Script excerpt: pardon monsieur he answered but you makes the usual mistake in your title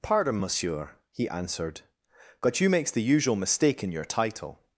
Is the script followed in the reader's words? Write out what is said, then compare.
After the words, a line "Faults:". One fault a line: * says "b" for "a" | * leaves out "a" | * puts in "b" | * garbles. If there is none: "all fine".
pardon monsieur he answered but you makes the usual mistake in your title
Faults:
all fine